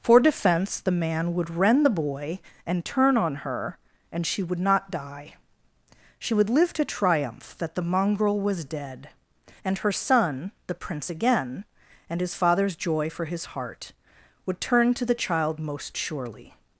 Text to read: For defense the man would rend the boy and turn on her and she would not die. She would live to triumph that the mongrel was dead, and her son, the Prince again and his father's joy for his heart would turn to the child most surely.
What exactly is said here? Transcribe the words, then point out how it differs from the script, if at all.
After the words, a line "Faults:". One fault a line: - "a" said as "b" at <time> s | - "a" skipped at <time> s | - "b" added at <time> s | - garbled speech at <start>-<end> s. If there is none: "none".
For defense the man would rend the boy and turn on her and she would not die. She would live to triumph that the mongrel was dead, and her son, the Prince again and his father's joy for his heart would turn to the child most surely.
Faults:
none